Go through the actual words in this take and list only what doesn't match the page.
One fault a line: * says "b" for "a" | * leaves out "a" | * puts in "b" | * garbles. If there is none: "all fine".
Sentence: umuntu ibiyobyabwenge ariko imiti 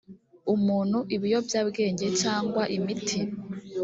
* says "cyangwa" for "ariko"